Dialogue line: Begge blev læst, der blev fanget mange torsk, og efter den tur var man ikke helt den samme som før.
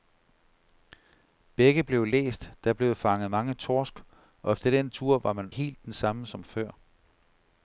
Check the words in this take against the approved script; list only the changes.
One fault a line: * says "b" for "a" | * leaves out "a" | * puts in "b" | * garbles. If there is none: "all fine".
* leaves out "ikke"